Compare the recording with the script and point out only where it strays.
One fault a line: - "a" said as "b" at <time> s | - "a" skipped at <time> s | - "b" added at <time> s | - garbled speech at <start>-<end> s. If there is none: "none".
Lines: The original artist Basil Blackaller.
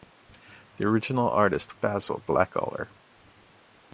none